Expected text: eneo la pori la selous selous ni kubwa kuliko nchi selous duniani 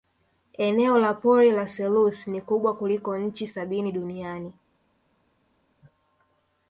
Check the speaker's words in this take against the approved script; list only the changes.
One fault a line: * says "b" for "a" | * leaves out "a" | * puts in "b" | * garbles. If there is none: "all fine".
* leaves out "selous"
* says "sabini" for "selous"